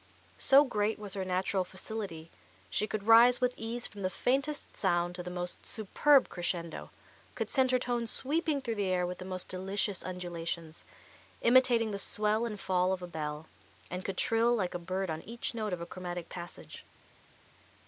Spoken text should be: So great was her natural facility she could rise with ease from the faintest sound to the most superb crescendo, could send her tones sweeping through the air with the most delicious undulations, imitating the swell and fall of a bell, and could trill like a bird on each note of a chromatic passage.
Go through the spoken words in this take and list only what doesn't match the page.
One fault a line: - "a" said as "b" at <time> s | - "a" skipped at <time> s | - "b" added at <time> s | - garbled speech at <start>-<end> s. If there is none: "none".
none